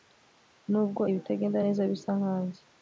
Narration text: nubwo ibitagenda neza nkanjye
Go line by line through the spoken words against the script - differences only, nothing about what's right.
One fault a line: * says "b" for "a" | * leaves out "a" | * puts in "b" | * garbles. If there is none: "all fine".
* puts in "bisa"